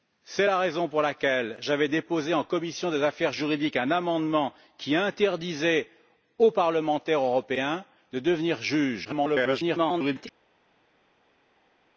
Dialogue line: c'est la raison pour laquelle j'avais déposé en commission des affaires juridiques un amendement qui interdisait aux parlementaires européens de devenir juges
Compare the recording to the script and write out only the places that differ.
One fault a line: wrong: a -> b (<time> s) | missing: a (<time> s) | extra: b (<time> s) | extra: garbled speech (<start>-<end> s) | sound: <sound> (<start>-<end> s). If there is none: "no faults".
extra: garbled speech (9.0-10.3 s)